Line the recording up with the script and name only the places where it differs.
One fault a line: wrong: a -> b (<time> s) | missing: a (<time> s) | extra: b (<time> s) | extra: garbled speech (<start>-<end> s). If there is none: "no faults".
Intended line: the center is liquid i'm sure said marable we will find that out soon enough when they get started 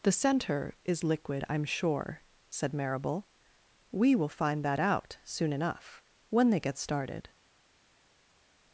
no faults